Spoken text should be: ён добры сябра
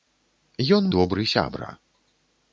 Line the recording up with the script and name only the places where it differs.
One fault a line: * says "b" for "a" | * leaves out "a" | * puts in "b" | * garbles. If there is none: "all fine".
all fine